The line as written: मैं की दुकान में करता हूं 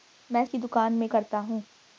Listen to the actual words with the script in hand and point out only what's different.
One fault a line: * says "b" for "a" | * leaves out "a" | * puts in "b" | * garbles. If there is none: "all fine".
all fine